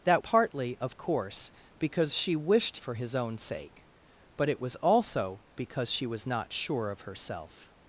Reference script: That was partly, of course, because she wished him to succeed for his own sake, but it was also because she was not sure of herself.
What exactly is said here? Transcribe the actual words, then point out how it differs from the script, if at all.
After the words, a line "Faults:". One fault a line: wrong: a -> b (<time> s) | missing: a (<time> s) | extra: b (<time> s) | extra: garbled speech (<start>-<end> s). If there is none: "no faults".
That partly, of course, because she wished for his own sake, but it was also because she was not sure of herself.
Faults:
missing: was (0.2 s)
missing: him to succeed (2.8 s)